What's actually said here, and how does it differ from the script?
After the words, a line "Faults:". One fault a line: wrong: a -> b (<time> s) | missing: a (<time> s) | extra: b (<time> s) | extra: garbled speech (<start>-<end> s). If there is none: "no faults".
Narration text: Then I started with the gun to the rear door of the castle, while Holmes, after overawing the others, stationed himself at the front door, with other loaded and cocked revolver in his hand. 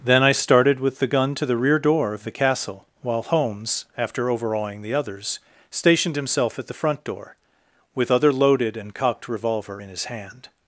Then I started with the gun to the rear door of the castle, while Holmes, after overawing the others, stationed himself at the front door, with other loaded and cocked revolver in his hand.
Faults:
no faults